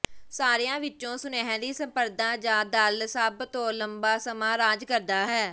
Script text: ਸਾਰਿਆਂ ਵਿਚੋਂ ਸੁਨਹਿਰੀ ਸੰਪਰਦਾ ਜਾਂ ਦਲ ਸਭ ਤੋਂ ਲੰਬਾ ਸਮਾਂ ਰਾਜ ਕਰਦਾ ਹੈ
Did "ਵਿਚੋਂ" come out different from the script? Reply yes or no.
no